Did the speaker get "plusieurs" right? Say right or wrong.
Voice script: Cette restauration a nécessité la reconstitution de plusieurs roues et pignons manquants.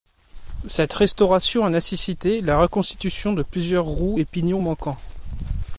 right